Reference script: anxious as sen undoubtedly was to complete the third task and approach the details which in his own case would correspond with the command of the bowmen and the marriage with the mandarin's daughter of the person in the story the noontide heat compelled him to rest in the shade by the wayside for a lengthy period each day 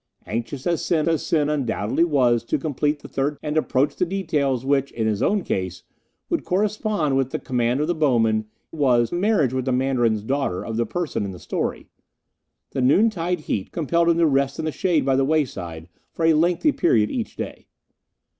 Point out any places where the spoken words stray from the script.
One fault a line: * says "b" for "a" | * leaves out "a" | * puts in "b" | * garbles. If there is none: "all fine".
* puts in "as sen"
* leaves out "task"
* says "was" for "and"